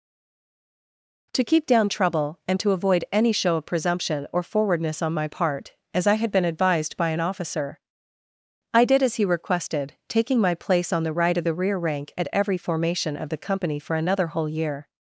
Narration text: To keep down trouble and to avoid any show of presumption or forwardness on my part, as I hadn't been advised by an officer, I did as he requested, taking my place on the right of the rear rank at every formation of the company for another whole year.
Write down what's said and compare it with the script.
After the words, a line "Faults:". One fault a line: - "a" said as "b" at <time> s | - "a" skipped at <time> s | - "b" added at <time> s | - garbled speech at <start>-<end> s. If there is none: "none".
To keep down trouble and to avoid any show of presumption or forwardness on my part, as I had been advised by an officer, I did as he requested, taking my place on the right of the rear rank at every formation of the company for another whole year.
Faults:
- "hadn't" said as "had" at 6.1 s